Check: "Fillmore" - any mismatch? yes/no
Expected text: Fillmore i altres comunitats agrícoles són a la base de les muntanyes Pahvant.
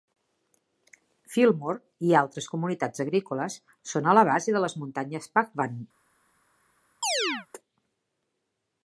no